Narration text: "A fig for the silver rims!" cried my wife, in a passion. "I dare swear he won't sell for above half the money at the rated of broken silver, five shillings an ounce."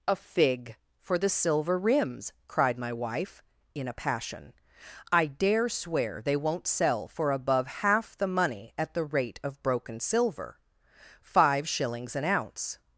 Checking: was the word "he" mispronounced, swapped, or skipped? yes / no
yes